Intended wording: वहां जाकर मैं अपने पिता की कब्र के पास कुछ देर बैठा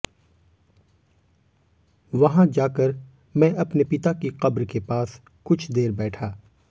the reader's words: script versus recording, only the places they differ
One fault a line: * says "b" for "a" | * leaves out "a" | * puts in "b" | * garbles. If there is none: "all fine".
all fine